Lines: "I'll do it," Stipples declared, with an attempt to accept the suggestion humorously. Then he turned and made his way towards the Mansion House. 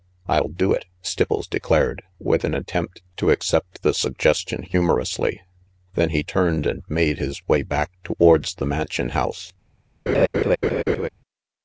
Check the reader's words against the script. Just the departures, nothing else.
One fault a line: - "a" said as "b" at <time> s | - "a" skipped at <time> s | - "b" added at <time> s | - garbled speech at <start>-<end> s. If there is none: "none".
- "back" added at 7.6 s